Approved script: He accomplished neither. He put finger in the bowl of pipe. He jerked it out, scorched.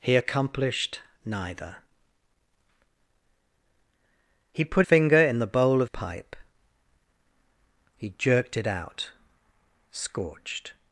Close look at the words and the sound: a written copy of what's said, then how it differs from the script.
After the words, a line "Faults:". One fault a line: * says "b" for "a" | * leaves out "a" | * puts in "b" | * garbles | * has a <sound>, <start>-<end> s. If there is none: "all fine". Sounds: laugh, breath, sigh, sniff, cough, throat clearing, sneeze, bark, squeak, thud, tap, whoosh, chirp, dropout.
He accomplished neither. He put finger in the bowl of pipe. He jerked it out, scorched.
Faults:
all fine